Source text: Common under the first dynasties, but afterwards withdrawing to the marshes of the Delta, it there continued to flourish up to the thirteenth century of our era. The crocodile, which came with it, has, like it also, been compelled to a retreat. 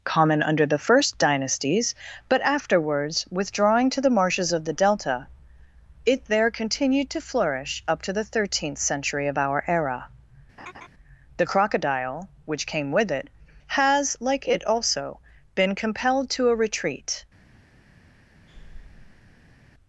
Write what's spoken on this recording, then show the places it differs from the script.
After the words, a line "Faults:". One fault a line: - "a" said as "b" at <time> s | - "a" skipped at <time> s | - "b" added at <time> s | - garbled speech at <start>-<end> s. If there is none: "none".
Common under the first dynasties, but afterwards withdrawing to the marshes of the Delta, it there continued to flourish up to the thirteenth century of our era. The crocodile, which came with it, has, like it also, been compelled to a retreat.
Faults:
none